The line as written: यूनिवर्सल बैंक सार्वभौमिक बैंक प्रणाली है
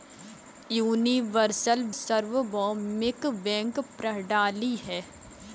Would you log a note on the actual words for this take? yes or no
yes